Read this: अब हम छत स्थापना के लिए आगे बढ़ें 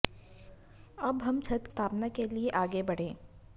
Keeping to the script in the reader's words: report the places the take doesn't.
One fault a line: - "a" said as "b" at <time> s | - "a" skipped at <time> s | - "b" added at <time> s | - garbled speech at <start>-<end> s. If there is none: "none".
none